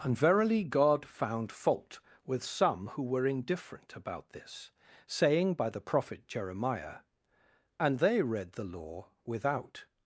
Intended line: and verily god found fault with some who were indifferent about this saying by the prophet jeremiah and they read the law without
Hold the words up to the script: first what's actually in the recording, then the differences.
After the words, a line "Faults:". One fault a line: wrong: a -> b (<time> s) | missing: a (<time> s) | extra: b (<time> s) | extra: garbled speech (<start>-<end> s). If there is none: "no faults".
and verily god found fault with some who were indifferent about this saying by the prophet jeremiah and they read the law without
Faults:
no faults